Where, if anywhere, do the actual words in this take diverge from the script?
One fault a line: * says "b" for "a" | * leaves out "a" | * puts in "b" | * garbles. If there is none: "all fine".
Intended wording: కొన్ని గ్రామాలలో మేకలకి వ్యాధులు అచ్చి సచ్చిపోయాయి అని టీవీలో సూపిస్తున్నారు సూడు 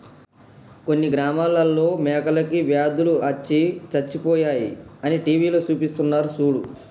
all fine